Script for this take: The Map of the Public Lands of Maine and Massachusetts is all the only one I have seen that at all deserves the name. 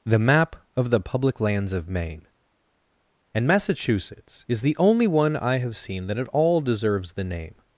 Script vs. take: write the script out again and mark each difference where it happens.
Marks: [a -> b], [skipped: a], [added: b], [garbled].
The Map of the Public Lands of Maine and Massachusetts is [skipped: all] the only one I have seen that at all deserves the name.